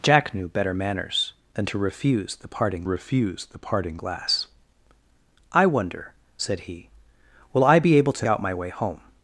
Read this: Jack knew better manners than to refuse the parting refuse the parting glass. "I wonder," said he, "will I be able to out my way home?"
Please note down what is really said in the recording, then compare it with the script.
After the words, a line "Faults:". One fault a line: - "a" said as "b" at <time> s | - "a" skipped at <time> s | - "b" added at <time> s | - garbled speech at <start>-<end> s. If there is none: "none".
Jack knew better manners than to refuse the parting refuse the parting glass. "I wonder," said he, "will I be able to out my way home?"
Faults:
none